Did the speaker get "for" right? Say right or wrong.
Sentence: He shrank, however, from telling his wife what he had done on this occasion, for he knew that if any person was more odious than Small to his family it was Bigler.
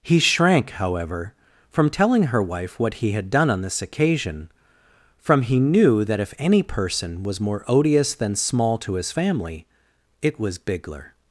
wrong